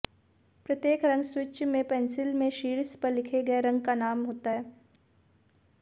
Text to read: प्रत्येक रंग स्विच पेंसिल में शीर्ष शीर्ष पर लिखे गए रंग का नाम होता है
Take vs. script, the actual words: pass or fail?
fail